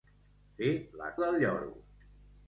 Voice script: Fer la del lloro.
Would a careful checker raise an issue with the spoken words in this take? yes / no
no